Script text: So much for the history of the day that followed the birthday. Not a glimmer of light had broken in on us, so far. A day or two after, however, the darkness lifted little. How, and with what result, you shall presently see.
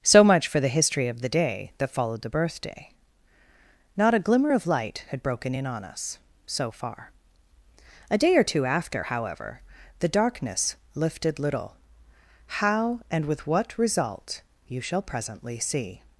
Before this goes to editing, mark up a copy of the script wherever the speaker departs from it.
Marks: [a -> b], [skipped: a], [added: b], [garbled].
So much for the history of the day that followed the birthday. Not a glimmer of light had broken in on us, so far. A day or two after, however, the darkness lifted little. How, and with what result, you shall presently see.